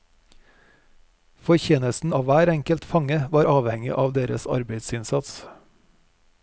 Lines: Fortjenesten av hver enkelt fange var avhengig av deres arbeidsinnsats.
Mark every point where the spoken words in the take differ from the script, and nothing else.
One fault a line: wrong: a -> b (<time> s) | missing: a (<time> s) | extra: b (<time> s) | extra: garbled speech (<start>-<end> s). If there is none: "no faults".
no faults